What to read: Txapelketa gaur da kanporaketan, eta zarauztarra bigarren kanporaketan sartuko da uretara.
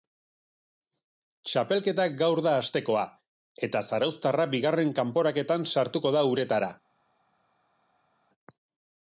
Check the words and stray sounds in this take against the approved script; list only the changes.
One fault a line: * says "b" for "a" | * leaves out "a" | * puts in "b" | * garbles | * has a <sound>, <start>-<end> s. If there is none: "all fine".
* says "hastekoa" for "kanporaketan"